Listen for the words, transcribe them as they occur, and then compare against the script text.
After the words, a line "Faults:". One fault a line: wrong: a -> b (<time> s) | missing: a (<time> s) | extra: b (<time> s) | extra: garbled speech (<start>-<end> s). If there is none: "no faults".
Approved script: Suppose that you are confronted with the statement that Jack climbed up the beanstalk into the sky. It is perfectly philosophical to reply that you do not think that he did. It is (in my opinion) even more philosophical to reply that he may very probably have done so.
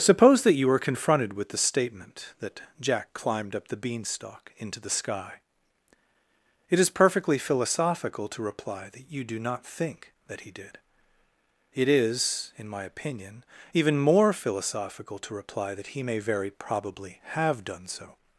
Suppose that you were confronted with the statement that Jack climbed up the beanstalk into the sky. It is perfectly philosophical to reply that you do not think that he did. It is (in my opinion) even more philosophical to reply that he may very probably have done so.
Faults:
wrong: are -> were (0.7 s)